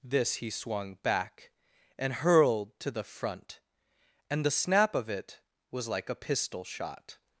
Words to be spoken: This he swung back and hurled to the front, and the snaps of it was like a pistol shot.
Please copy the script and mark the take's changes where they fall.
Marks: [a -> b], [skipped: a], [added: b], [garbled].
This he swung back and hurled to the front, and the [snaps -> snap] of it was like a pistol shot.